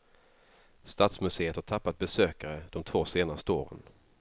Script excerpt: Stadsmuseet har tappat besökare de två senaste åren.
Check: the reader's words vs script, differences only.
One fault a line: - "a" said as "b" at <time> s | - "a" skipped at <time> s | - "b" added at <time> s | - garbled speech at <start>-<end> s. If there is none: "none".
none